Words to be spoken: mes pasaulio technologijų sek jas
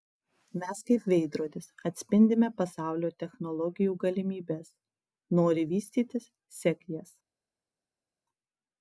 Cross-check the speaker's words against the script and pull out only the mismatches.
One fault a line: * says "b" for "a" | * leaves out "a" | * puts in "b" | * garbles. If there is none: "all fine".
* puts in "kaip veidrodis atspindime"
* puts in "galimybes nori vystytis"